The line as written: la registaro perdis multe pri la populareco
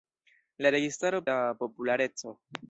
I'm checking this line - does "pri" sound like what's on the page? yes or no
no